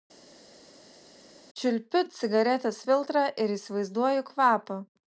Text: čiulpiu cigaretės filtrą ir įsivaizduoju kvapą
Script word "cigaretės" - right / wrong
right